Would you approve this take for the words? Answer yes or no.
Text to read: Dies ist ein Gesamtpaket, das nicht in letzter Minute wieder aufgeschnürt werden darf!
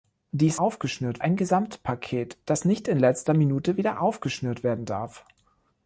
no